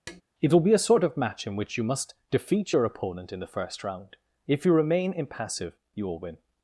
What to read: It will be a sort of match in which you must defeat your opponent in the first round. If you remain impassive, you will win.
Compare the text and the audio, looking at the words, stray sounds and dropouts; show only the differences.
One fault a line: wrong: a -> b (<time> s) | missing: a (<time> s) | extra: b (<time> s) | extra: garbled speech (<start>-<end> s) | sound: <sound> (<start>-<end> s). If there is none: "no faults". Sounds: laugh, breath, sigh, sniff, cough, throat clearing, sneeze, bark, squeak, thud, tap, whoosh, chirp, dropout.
sound: tap (0.1-0.2 s)